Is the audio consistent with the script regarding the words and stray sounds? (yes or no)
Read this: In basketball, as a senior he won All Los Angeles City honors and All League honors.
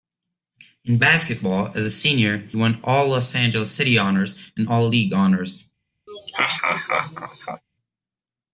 no